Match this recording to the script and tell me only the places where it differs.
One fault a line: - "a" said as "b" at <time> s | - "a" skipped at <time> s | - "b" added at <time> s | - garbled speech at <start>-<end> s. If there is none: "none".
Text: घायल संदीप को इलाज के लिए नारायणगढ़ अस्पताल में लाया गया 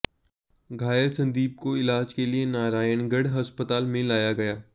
none